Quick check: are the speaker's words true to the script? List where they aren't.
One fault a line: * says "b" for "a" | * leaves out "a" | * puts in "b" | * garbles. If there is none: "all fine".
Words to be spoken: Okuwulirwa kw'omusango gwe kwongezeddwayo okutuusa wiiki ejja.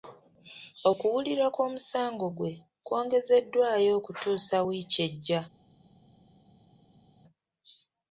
all fine